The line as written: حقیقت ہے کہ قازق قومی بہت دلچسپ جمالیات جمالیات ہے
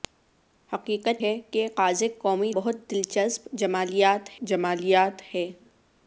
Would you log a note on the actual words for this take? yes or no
no